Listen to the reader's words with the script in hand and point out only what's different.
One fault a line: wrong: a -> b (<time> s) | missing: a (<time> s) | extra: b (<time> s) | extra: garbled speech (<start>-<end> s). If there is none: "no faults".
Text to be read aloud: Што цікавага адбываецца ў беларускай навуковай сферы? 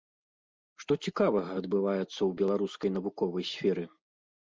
no faults